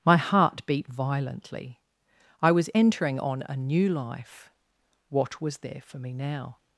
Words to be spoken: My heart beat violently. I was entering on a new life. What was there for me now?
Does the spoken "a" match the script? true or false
true